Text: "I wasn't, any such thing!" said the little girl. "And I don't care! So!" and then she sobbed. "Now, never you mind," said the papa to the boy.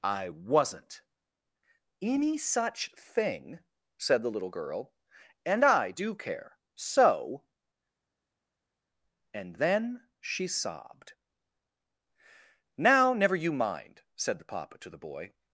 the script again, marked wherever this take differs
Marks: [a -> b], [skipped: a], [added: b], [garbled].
"I wasn't, any such thing!" said the little girl. "And I [don't -> do] care! So!" and then she sobbed. "Now, never you mind," said the papa to the boy.